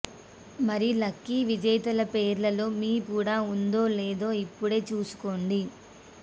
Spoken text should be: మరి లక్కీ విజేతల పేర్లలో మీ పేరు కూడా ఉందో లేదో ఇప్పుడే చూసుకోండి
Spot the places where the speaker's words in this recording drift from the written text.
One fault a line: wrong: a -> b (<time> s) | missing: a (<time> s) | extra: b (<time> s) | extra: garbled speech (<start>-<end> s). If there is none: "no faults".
missing: పేరు (2.9 s)